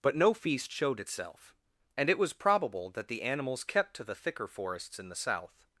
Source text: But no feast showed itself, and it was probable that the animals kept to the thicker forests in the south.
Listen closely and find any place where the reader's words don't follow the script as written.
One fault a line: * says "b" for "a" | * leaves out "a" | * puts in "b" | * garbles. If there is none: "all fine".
all fine